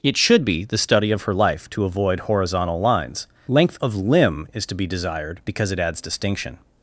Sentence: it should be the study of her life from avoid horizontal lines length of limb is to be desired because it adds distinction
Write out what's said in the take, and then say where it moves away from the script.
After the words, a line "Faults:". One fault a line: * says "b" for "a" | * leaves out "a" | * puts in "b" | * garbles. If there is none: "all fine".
it should be the study of her life to avoid horizontal lines length of limb is to be desired because it adds distinction
Faults:
* says "to" for "from"